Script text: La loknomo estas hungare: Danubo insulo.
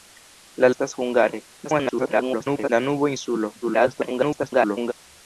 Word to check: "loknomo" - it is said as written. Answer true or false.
false